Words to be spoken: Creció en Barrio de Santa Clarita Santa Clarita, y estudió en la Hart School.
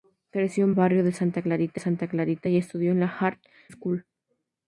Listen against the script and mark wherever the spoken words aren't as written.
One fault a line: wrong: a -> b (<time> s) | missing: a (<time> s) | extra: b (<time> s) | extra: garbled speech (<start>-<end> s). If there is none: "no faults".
no faults